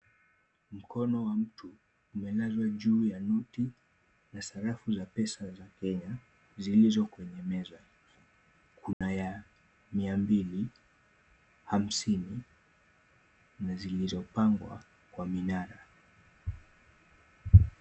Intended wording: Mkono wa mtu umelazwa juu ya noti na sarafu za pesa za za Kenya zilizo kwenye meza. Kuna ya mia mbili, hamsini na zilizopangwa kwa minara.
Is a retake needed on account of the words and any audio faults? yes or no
yes